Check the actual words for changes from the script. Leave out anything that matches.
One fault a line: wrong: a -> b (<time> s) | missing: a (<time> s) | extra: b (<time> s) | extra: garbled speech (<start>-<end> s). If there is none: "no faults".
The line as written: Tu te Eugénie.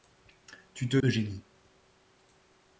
no faults